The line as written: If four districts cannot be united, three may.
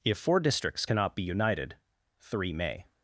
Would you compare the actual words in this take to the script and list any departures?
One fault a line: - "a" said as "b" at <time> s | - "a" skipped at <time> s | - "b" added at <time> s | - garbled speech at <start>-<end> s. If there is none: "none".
none